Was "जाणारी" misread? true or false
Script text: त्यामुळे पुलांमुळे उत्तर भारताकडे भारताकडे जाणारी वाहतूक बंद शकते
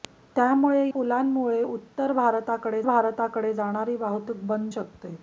false